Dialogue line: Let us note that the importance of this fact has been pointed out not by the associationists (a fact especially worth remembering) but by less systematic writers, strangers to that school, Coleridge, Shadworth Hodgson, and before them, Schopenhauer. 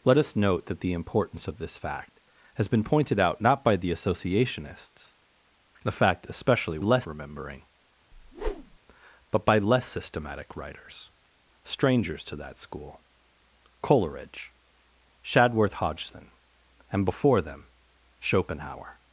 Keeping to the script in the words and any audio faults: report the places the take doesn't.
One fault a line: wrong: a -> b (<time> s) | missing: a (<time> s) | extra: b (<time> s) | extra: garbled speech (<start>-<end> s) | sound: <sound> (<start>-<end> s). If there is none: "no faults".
wrong: worth -> less (6.8 s)
sound: whoosh (8.1-8.8 s)